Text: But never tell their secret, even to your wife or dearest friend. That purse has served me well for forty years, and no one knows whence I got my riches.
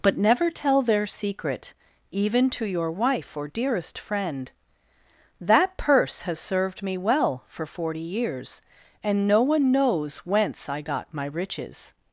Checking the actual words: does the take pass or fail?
pass